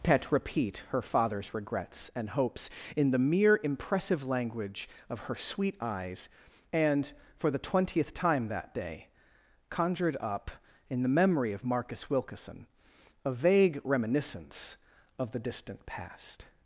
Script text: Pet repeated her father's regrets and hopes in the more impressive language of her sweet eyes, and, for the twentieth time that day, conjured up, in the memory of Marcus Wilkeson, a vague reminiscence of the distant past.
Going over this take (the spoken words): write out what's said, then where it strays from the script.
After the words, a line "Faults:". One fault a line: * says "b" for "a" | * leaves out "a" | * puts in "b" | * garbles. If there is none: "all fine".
Pet repeat her father's regrets and hopes in the mere impressive language of her sweet eyes, and, for the twentieth time that day, conjured up, in the memory of Marcus Wilkeson, a vague reminiscence of the distant past.
Faults:
* says "repeat" for "repeated"
* says "mere" for "more"